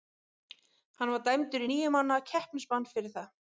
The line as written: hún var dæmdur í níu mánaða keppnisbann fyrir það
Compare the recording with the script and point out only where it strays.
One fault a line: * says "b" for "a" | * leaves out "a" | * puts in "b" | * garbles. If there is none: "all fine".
* says "hann" for "hún"